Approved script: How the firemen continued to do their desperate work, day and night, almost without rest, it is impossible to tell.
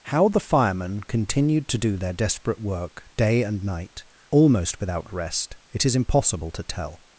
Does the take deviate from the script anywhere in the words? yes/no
no